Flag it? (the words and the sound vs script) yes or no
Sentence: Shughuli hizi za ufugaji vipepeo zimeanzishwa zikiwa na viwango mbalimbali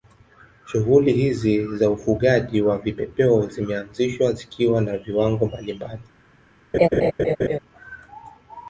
yes